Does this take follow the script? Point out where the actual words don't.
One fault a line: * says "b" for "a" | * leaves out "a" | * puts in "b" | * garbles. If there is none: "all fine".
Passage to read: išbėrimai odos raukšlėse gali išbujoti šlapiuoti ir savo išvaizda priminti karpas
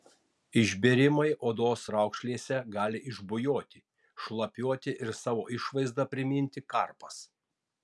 all fine